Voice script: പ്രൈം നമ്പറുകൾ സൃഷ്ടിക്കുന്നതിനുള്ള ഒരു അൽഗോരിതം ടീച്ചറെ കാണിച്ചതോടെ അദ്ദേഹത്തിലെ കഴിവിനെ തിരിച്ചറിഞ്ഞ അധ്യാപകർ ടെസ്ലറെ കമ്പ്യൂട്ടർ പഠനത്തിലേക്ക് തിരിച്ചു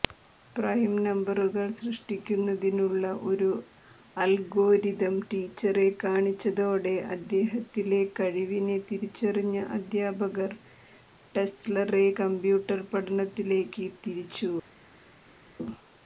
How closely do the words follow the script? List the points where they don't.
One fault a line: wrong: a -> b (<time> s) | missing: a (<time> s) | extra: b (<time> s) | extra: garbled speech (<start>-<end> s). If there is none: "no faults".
no faults